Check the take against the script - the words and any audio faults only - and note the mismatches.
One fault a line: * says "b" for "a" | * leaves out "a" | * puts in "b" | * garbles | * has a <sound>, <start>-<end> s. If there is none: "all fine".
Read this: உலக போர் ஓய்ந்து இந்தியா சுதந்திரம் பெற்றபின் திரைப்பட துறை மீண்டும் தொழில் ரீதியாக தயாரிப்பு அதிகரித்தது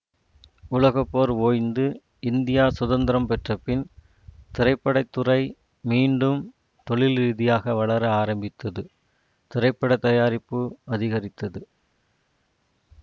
* puts in "வளர ஆரம்பித்தது திரைப்பட"